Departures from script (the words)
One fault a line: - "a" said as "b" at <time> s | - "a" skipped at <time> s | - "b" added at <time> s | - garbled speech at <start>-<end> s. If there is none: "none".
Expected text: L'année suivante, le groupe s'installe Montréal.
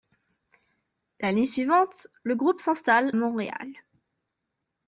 none